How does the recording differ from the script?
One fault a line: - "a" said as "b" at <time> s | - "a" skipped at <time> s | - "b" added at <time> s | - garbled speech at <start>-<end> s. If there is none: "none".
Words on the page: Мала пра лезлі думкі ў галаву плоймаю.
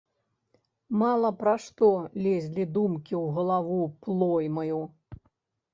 - "што" added at 1.6 s